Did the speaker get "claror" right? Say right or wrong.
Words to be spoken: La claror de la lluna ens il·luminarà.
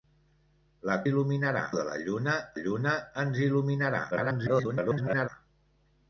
wrong